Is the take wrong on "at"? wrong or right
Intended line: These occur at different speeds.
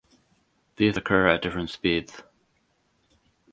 right